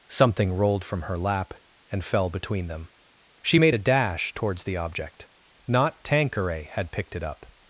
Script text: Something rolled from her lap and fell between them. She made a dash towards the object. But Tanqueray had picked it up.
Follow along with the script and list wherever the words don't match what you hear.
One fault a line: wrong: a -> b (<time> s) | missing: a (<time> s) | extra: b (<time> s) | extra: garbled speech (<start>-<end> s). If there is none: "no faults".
wrong: But -> Not (5.7 s)